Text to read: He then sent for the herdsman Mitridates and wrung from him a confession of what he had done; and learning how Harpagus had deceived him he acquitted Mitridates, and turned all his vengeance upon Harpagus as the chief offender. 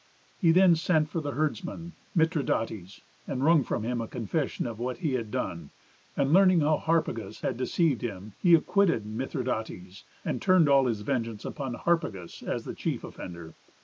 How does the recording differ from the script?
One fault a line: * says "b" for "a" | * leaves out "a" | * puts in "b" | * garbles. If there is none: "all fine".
all fine